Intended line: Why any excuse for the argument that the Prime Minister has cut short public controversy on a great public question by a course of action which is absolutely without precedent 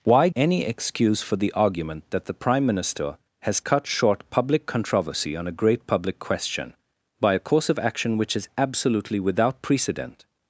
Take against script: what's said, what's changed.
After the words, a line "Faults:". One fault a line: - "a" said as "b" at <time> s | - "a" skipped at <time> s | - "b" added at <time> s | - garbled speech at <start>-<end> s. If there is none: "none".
Why any excuse for the argument that the Prime Minister has cut short public controversy on a great public question by a course of action which is absolutely without precedent
Faults:
none